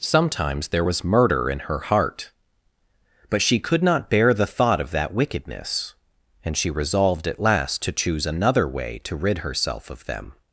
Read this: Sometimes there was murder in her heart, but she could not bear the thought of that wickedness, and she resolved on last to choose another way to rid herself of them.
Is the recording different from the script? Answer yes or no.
yes